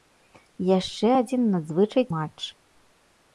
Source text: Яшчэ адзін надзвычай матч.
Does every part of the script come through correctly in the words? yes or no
yes